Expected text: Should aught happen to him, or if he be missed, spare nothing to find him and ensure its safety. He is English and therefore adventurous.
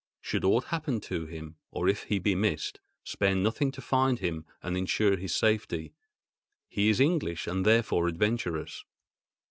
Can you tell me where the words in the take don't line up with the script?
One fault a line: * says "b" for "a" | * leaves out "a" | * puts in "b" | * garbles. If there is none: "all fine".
* says "his" for "its"